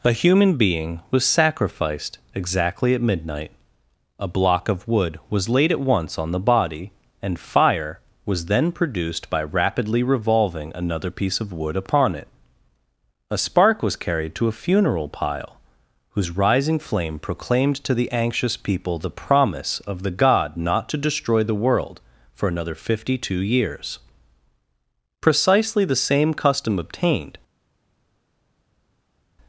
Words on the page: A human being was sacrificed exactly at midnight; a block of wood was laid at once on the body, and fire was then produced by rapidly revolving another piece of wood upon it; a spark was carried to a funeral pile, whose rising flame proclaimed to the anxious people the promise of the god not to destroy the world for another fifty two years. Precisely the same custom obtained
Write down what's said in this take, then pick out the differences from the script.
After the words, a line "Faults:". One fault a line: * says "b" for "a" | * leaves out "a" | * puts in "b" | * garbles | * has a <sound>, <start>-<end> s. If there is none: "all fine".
A human being was sacrificed exactly at midnight; a block of wood was laid at once on the body, and fire was then produced by rapidly revolving another piece of wood upon it; a spark was carried to a funeral pile, whose rising flame proclaimed to the anxious people the promise of the god not to destroy the world for another fifty two years. Precisely the same custom obtained
Faults:
all fine